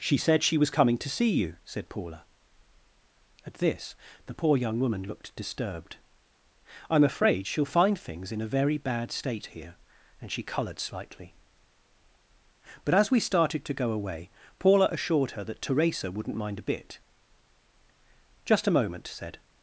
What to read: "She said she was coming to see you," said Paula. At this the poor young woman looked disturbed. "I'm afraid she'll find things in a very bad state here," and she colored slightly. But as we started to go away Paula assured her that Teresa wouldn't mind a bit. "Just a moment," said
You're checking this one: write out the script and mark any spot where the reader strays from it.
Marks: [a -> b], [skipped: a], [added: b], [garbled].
"She said she was coming to see you," said Paula. At this the poor young woman looked disturbed. "I'm afraid she'll find things in a very bad state here," and she colored slightly. But as we started to go away Paula assured her that Teresa wouldn't mind a bit. "Just a moment," said